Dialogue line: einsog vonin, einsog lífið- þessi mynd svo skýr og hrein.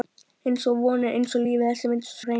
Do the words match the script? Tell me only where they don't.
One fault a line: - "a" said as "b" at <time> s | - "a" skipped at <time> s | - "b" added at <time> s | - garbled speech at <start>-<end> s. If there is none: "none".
- "skýr" skipped at 2.2 s